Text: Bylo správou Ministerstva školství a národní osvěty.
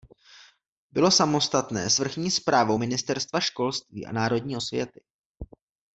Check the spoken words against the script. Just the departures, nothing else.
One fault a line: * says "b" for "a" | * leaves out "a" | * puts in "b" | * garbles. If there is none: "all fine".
* puts in "samostatné s vrchní"